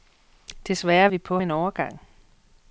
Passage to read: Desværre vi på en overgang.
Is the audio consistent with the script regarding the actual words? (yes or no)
yes